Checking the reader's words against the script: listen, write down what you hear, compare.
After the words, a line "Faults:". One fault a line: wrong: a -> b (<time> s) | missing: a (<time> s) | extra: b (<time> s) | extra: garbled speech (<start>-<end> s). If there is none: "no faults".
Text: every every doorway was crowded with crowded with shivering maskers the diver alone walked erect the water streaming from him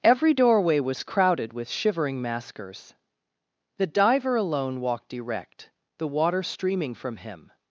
every doorway was crowded with shivering maskers the diver alone walked erect the water streaming from him
Faults:
missing: every (0.3 s)
missing: crowded with (1.7 s)